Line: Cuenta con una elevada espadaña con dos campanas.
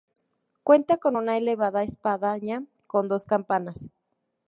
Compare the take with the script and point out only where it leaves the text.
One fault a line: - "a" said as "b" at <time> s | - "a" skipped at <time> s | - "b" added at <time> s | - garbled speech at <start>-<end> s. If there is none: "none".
none